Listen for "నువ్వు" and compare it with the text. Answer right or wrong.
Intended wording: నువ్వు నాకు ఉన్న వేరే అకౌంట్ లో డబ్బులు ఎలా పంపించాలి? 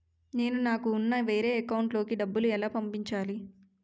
wrong